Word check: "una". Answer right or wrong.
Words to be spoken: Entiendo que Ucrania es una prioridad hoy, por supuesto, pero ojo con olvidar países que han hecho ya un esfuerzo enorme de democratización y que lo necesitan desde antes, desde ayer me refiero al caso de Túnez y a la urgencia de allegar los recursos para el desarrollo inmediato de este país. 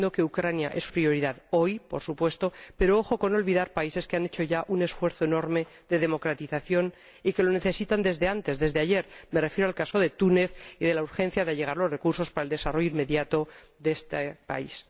wrong